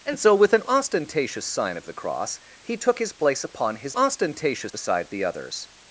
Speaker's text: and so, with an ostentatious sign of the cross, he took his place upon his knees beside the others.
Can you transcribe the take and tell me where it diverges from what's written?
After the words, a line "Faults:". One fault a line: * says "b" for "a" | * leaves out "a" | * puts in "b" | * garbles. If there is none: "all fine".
and so, with an ostentatious sign of the cross, he took his place upon his ostentatious beside the others.
Faults:
* says "ostentatious" for "knees"